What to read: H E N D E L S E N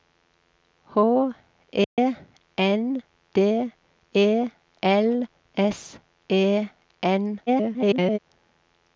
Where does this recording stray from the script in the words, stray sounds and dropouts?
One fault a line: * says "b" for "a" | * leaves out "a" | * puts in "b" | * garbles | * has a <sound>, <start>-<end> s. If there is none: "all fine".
* has a dropout, 1.8-2.0 s
* garbles